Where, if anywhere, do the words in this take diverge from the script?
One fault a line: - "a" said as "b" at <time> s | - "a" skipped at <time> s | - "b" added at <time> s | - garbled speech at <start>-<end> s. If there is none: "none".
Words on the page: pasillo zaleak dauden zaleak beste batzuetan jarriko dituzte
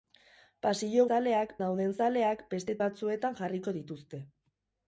none